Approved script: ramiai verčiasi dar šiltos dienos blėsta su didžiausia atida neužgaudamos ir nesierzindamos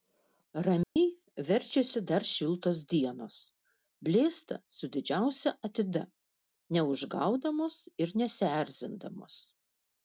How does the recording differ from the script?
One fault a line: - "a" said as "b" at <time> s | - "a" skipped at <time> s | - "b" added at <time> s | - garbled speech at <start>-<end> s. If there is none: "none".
none